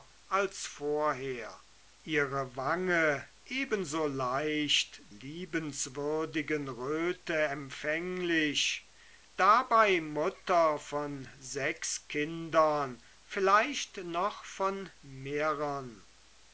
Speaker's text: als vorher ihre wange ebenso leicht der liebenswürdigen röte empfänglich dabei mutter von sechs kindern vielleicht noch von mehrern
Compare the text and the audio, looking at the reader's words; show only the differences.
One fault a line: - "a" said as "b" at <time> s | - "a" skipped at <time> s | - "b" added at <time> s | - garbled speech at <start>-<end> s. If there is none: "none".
- "der" skipped at 5.0 s